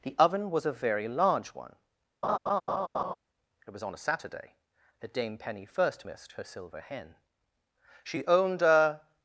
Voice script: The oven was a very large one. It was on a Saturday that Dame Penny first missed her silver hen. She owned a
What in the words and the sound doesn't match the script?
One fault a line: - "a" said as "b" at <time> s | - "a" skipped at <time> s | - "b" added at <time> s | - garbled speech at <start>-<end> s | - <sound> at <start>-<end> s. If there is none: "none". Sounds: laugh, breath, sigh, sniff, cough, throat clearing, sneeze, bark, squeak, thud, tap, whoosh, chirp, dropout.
- laugh at 2.2-3.1 s